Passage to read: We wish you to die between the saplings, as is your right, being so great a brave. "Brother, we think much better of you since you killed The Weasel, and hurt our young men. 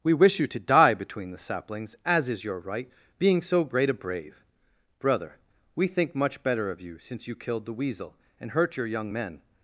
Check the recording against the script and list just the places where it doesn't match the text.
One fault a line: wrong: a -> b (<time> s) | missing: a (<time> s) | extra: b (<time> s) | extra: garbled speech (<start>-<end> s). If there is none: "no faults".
wrong: our -> your (8.8 s)